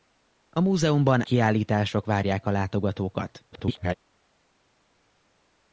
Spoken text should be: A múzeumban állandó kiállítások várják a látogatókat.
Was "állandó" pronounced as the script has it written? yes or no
no